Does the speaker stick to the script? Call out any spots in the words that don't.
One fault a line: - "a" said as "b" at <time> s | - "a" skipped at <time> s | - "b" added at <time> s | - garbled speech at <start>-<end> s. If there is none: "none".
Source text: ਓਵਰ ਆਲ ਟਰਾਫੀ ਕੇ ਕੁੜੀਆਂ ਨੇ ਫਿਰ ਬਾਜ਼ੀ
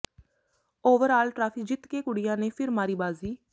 - "ਜਿੱਤ" added at 1.6 s
- "ਮਾਰੀ" added at 2.7 s